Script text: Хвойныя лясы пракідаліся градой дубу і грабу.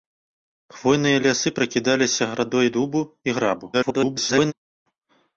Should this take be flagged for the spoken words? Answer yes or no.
yes